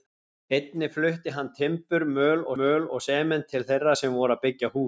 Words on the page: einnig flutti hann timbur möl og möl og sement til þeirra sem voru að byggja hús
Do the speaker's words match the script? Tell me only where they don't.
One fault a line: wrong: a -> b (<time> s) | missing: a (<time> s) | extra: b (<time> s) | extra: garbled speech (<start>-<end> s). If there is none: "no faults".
no faults